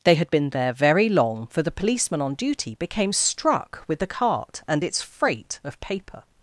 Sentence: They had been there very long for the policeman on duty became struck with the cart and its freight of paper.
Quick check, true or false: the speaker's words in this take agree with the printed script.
true